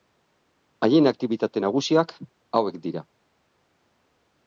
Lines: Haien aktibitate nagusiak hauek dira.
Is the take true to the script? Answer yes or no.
yes